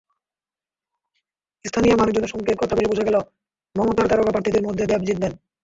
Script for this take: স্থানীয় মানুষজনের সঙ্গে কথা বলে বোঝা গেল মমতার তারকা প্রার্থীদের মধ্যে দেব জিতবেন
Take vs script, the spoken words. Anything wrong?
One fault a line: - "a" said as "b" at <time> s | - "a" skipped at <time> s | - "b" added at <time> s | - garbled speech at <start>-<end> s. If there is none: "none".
none